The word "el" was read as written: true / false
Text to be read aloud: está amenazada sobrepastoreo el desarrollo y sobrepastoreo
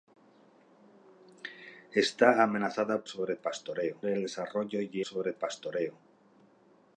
true